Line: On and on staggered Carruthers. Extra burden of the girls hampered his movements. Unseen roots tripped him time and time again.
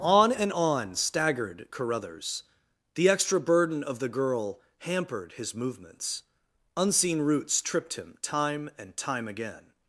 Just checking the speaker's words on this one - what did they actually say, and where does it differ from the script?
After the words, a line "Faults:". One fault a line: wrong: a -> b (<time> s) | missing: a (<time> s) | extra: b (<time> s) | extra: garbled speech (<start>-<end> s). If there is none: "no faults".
On and on staggered Carruthers. The extra burden of the girl hampered his movements. Unseen roots tripped him time and time again.
Faults:
extra: The (3.0 s)
wrong: girls -> girl (4.1 s)